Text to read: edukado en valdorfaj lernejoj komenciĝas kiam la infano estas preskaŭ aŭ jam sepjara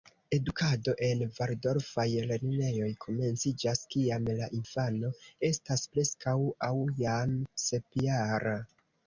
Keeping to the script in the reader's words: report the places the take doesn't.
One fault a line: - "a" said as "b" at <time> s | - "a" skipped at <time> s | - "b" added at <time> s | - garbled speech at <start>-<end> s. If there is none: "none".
none